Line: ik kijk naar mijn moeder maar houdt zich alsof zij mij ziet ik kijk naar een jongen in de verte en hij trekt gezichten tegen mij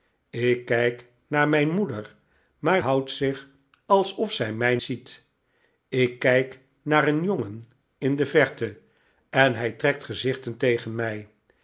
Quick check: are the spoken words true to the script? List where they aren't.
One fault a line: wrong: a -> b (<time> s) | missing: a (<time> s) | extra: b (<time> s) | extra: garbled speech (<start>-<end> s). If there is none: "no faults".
no faults